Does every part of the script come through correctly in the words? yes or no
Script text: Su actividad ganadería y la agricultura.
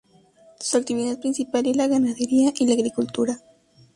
no